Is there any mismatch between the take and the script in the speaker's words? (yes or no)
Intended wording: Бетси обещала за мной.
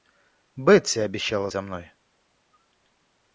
no